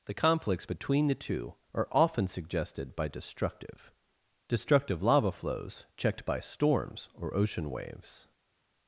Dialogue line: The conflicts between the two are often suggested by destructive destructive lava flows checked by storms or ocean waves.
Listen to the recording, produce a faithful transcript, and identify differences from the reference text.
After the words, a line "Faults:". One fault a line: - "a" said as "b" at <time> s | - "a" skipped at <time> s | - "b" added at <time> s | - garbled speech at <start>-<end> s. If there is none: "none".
The conflicts between the two are often suggested by destructive destructive lava flows checked by storms or ocean waves.
Faults:
none